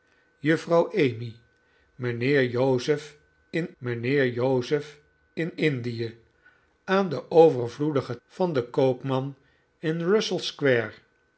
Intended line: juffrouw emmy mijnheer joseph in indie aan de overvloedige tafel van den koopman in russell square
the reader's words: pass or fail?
fail